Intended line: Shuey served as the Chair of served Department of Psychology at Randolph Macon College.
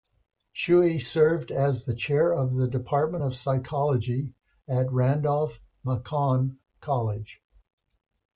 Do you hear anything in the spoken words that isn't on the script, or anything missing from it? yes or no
yes